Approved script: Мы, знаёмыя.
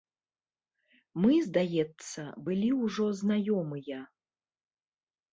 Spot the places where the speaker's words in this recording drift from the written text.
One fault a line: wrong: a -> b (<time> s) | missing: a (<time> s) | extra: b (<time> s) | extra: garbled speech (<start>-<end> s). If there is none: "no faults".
extra: здаецца былі ўжо (1.5 s)